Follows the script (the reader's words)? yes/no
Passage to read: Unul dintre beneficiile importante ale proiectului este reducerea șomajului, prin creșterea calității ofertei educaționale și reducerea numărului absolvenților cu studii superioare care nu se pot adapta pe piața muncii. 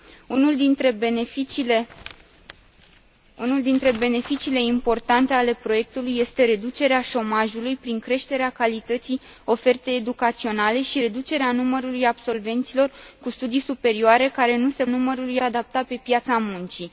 no